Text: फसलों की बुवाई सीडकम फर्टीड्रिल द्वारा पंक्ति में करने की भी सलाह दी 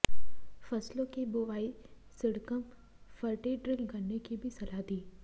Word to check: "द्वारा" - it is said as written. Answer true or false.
false